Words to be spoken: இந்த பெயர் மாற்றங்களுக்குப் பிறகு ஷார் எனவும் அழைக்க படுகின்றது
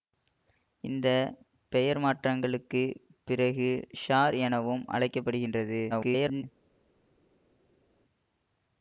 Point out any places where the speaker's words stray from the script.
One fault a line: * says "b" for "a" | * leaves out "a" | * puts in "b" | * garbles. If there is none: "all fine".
* garbles